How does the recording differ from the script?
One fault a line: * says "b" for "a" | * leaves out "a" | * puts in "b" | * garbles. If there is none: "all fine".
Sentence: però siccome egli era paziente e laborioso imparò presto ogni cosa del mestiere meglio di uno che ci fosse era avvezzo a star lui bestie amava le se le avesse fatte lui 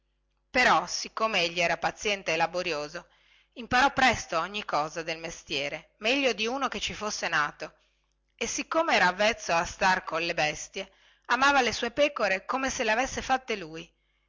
* puts in "nato e siccome"
* says "colle" for "lui"
* puts in "sue pecore come"